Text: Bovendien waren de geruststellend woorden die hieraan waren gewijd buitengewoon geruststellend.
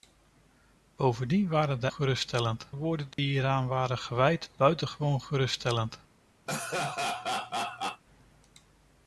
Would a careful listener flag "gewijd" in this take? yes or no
no